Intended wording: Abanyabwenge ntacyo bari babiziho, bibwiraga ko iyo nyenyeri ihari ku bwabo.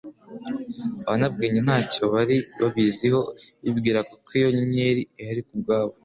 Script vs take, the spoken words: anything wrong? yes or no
no